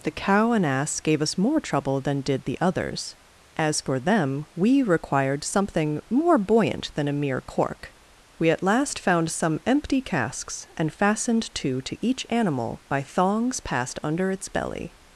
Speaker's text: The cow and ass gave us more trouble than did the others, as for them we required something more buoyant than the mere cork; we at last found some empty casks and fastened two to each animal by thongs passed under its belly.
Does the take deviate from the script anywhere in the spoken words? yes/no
yes